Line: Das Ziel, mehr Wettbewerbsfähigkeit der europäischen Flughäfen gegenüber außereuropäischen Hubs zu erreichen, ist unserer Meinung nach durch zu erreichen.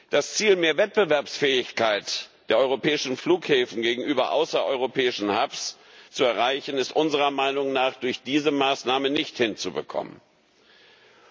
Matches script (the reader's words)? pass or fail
fail